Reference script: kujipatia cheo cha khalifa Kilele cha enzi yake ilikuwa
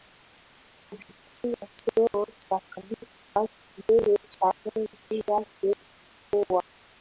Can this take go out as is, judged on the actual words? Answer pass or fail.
pass